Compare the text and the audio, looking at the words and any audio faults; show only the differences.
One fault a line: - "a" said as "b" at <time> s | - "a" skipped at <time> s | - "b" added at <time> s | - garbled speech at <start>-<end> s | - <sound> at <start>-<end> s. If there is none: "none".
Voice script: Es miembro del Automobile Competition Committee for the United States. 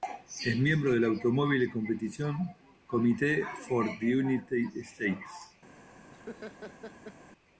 - laugh at 6.1-7.2 s